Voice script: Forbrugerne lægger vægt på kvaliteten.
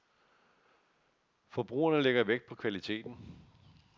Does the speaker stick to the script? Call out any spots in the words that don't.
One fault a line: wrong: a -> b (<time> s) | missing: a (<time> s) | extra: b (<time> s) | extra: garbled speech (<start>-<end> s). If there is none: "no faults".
no faults